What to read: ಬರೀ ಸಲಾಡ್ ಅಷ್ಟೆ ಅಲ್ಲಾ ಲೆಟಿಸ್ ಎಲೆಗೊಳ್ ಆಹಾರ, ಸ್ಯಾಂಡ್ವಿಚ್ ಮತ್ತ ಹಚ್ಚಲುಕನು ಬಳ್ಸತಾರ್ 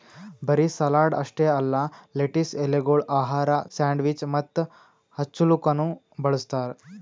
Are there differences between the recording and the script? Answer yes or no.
no